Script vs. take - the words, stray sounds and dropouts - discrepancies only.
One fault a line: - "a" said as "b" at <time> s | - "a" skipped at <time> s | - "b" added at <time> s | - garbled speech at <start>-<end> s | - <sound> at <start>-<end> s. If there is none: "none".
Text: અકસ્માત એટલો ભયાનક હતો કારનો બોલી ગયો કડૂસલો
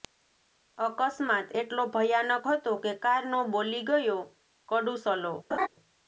- "કે" added at 2.8 s
- laugh at 5.5-5.7 s